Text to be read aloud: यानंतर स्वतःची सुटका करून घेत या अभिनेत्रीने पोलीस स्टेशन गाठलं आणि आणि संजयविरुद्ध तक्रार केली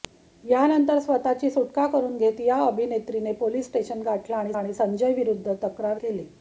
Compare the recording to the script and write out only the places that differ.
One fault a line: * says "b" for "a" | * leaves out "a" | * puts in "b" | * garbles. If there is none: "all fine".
all fine